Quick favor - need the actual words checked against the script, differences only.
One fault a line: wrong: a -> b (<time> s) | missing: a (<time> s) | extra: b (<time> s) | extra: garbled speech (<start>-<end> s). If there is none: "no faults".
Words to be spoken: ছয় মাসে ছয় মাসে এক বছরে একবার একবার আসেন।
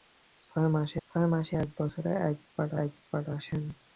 no faults